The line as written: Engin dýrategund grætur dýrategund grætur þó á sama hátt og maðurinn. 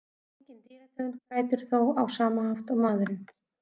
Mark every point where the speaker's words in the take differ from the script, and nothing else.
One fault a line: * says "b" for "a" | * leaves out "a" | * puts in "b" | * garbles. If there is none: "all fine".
* leaves out "dýrategund grætur"